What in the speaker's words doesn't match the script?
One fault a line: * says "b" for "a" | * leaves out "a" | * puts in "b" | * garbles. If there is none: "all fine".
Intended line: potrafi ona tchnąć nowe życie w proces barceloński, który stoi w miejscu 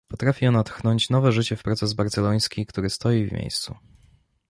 all fine